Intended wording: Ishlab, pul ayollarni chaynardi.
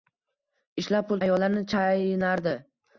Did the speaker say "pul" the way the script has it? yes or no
yes